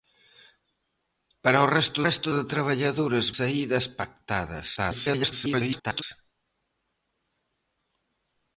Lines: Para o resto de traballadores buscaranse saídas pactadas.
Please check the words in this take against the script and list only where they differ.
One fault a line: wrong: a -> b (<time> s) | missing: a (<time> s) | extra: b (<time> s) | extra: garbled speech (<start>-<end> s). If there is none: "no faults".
extra: resto (2.1 s)
missing: buscaranse (3.3 s)
extra: garbled speech (4.8-6.0 s)